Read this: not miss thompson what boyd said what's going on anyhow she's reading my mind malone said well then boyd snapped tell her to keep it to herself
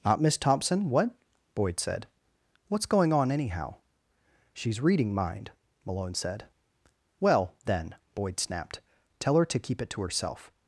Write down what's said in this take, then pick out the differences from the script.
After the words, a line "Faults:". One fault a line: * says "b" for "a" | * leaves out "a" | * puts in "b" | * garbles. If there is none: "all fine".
not miss thompson what boyd said what's going on anyhow she's reading mind malone said well then boyd snapped tell her to keep it to herself
Faults:
* leaves out "my"